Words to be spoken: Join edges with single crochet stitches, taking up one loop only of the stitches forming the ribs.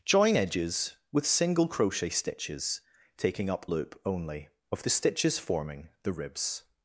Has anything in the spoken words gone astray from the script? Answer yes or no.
yes